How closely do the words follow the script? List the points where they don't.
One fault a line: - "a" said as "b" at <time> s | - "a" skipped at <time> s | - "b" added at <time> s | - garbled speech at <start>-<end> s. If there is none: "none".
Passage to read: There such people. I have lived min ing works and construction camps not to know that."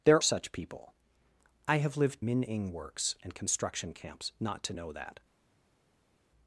none